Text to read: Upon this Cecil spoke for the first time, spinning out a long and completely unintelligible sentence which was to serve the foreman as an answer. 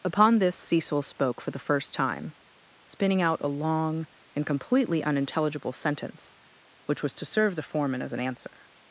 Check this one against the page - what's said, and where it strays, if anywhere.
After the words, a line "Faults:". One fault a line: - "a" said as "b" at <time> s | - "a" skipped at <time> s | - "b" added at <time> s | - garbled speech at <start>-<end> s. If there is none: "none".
Upon this Cecil spoke for the first time, spinning out a long and completely unintelligible sentence which was to serve the foreman as an answer.
Faults:
none